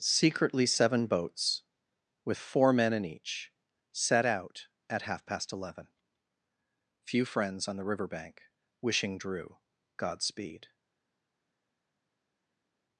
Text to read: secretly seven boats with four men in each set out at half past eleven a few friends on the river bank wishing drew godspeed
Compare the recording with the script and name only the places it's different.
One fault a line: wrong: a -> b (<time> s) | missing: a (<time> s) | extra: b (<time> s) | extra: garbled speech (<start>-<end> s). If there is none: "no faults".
missing: a (5.9 s)